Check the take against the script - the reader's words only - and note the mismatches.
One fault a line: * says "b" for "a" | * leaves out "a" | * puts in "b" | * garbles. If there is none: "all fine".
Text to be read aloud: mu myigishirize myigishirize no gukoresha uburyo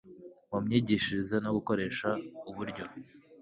* leaves out "myigishirize"